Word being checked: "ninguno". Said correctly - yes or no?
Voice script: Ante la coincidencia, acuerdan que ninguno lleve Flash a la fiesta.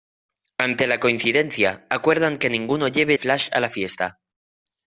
yes